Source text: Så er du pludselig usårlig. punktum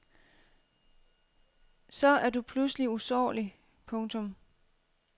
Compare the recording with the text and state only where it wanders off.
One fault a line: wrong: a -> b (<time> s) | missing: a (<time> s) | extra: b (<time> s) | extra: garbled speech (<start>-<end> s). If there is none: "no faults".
no faults